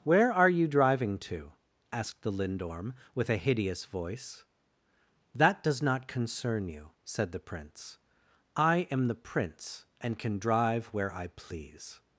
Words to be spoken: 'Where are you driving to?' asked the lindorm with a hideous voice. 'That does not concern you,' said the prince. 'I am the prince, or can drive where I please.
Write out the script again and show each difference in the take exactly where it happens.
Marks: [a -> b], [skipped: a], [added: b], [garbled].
'Where are you driving to?' asked the lindorm with a hideous voice. 'That does not concern you,' said the prince. 'I am the prince, [or -> and] can drive where I please.